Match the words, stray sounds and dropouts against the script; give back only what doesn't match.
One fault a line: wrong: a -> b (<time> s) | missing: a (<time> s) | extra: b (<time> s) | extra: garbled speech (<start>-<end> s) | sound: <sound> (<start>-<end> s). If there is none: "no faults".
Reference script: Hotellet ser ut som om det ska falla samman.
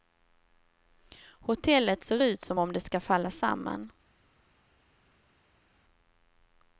no faults